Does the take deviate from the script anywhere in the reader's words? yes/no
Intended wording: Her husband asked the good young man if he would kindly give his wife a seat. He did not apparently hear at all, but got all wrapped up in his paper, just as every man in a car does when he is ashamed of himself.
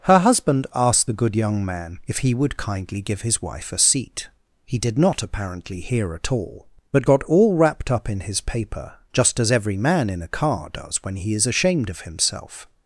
no